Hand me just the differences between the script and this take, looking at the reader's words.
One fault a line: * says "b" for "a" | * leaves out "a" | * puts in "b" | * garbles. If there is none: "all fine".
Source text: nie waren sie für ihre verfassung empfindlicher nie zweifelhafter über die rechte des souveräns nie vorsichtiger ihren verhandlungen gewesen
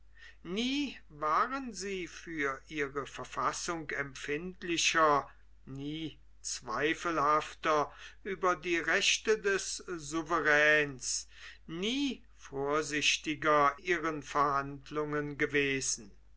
all fine